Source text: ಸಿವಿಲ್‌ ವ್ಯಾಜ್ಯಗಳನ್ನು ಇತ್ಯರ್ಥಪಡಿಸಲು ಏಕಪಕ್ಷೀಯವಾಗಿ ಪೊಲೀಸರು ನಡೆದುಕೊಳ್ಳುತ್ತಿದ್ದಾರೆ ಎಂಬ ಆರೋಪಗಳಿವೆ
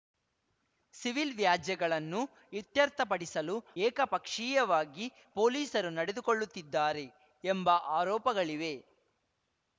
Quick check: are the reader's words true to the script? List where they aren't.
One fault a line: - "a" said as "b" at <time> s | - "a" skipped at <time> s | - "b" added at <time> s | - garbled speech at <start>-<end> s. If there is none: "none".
none